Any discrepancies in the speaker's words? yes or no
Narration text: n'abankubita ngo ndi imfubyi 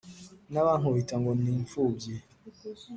no